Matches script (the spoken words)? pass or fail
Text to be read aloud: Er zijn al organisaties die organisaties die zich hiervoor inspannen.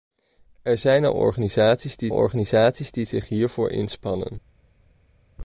pass